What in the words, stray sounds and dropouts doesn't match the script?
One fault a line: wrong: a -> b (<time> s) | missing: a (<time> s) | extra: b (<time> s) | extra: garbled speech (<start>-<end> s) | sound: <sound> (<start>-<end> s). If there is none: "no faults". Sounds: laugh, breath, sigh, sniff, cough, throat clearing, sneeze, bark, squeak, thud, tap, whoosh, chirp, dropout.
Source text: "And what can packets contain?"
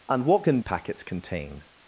no faults